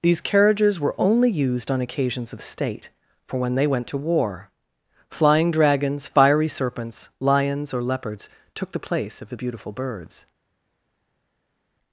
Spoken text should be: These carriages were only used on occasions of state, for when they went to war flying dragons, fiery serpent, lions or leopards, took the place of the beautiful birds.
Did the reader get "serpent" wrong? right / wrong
wrong